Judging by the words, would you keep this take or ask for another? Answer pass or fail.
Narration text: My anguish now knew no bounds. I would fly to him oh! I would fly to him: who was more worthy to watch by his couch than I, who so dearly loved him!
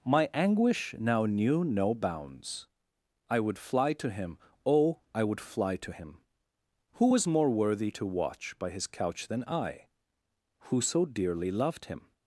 pass